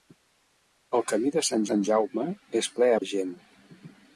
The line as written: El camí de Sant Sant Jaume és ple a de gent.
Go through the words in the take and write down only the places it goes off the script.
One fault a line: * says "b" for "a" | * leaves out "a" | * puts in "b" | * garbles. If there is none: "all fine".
all fine